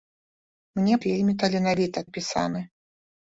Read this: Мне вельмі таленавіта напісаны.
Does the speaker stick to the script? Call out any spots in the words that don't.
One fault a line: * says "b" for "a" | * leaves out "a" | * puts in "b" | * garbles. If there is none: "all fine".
all fine